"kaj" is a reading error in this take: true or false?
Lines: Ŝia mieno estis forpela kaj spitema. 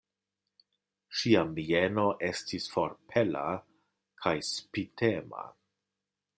false